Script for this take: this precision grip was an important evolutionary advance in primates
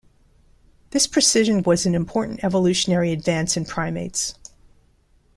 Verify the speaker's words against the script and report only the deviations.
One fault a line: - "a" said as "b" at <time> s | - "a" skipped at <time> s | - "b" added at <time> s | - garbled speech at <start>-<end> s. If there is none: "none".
- "grip" skipped at 1.6 s